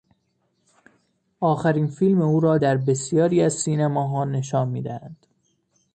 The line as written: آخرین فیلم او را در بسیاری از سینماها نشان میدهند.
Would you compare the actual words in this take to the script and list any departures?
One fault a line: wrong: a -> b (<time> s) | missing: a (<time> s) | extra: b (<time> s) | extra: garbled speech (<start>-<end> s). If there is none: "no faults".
no faults